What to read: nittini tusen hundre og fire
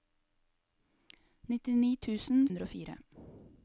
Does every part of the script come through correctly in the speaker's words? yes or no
yes